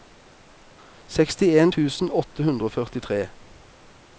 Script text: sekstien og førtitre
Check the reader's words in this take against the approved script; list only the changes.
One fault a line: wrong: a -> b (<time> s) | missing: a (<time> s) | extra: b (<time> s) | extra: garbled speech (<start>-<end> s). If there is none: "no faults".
extra: tusen åtte hundre (1.8 s)